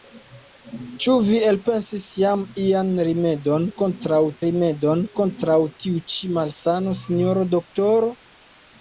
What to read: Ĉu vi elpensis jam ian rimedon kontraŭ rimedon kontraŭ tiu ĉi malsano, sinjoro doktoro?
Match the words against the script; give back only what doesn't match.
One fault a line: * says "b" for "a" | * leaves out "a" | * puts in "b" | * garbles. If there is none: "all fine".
all fine